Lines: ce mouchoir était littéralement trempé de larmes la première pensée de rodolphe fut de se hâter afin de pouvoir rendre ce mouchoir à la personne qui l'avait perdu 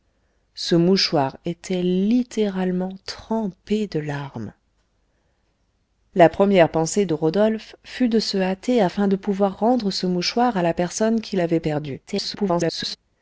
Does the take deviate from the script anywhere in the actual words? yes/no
yes